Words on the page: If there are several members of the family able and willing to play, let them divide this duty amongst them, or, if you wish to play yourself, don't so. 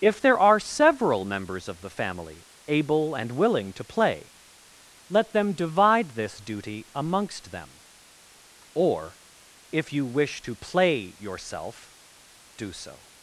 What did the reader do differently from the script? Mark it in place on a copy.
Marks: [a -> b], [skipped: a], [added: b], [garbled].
If there are several members of the family able and willing to play, let them divide this duty amongst them, or, if you wish to play yourself, [don't -> do] so.